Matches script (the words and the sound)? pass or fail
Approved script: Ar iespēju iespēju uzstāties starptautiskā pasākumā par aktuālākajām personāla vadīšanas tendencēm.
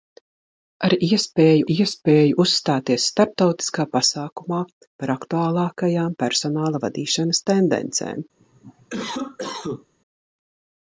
fail